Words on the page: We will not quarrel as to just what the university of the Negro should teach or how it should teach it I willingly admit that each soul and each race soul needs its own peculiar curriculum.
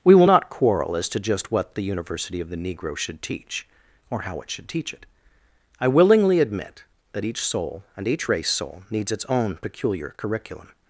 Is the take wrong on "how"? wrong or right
right